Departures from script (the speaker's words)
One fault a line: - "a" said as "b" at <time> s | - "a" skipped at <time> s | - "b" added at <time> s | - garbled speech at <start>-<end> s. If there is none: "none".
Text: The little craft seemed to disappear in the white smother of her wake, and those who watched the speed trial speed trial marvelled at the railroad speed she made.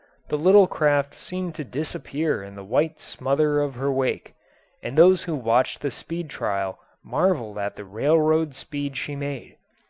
- "speed trial" skipped at 6.8 s